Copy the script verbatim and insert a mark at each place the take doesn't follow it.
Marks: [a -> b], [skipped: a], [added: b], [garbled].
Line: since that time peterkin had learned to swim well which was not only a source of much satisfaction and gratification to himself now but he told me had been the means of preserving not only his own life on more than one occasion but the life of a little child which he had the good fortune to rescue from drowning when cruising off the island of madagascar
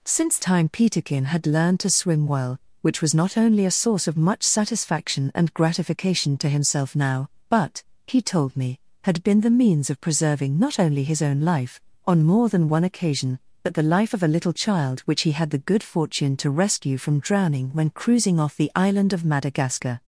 since [skipped: that] time peterkin had learned to swim well which was not only a source of much satisfaction and gratification to himself now but he told me had been the means of preserving not only his own life on more than one occasion but the life of a little child which he had the good fortune to rescue from drowning when cruising off the island of madagascar